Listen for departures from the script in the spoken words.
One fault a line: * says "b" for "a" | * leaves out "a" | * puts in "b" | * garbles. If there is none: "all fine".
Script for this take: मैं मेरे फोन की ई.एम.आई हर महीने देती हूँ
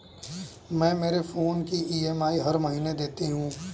all fine